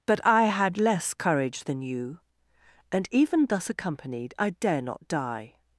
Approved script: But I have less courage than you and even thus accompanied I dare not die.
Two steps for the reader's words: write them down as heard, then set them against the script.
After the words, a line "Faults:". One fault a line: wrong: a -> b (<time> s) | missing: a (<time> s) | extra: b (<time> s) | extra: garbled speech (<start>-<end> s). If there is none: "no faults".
But I had less courage than you and even thus accompanied I dare not die.
Faults:
wrong: have -> had (0.4 s)